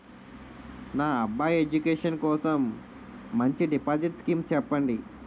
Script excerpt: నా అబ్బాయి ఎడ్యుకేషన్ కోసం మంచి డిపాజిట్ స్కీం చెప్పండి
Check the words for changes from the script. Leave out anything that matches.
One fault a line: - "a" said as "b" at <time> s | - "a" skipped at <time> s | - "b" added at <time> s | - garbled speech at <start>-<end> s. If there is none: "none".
none